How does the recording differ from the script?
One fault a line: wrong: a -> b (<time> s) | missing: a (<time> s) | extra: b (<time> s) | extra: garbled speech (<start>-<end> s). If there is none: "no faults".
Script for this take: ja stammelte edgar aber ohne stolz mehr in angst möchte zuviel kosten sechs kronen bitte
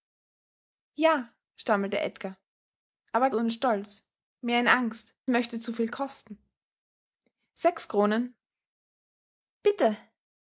no faults